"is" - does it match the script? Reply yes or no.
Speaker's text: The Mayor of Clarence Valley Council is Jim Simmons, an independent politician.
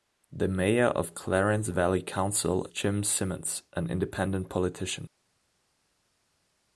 no